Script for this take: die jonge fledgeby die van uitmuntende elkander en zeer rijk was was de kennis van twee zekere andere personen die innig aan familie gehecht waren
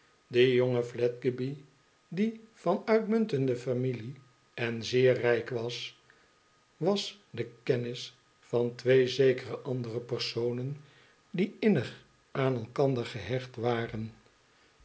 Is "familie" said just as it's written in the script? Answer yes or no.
no